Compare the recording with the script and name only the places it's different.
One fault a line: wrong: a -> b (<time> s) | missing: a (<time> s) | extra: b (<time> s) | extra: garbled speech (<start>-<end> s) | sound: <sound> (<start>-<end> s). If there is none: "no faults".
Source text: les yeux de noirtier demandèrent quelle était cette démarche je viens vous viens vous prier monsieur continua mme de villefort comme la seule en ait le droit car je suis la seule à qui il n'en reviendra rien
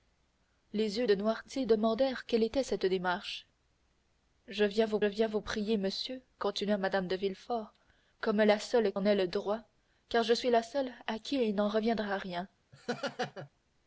sound: laugh (12.7-13.5 s)